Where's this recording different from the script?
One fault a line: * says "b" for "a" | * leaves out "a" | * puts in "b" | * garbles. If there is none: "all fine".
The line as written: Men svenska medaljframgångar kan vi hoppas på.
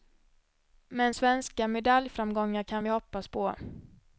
all fine